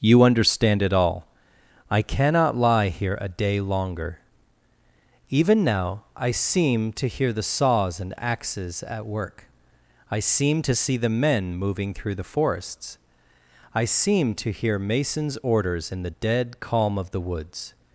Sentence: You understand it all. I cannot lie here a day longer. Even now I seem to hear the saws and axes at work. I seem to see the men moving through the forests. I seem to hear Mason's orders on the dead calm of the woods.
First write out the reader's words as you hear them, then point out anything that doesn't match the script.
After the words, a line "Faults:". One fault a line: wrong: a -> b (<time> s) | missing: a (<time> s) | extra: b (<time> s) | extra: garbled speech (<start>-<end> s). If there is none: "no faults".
You understand it all. I cannot lie here a day longer. Even now I seem to hear the saws and axes at work. I seem to see the men moving through the forests. I seem to hear Mason's orders in the dead calm of the woods.
Faults:
wrong: on -> in (15.9 s)